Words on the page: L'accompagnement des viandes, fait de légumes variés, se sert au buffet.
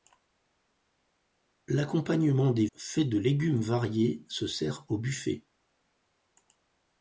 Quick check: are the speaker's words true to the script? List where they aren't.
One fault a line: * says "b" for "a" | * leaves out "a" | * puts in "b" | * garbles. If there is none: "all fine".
* leaves out "viandes"